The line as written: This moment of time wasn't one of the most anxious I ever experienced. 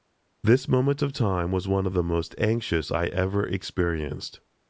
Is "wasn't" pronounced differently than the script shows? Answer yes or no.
yes